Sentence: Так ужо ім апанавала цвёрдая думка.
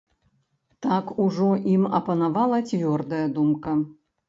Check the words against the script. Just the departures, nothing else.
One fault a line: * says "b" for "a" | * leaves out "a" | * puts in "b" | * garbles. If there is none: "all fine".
all fine